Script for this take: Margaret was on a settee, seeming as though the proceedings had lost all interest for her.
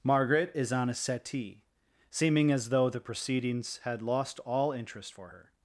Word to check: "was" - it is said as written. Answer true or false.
false